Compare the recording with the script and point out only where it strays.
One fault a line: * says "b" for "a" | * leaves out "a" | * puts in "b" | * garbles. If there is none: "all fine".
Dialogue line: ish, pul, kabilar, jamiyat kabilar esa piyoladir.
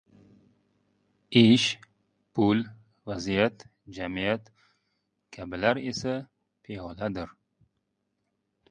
* says "vaziyat" for "kabilar"